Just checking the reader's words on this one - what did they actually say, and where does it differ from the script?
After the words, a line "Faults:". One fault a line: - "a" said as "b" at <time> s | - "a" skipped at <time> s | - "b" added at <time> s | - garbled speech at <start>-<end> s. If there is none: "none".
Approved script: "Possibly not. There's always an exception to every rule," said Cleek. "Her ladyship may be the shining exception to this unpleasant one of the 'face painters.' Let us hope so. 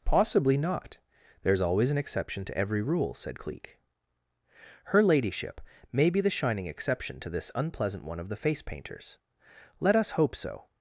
"Possibly not. There's always an exception to every rule," said Cleek. "Her ladyship may be the shining exception to this unpleasant one of the 'face painters.' Let us hope so.
Faults:
none